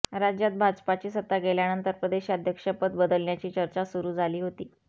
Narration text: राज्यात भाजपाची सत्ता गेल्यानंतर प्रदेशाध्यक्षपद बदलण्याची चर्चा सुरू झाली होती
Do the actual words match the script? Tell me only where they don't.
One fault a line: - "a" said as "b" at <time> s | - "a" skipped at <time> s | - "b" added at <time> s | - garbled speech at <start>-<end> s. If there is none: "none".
none